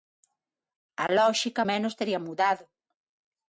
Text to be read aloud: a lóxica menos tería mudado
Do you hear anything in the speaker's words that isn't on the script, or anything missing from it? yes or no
no